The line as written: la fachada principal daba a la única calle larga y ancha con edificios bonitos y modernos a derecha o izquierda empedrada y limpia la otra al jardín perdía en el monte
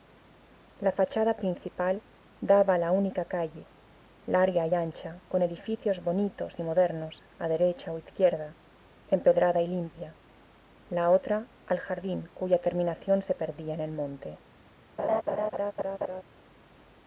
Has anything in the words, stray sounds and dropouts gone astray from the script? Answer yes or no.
yes